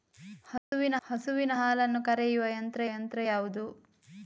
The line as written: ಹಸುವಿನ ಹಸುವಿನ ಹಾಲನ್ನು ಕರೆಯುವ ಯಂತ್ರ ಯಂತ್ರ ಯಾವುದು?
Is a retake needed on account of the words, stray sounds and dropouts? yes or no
yes